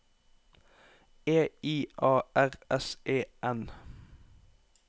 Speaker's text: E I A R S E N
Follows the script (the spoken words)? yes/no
yes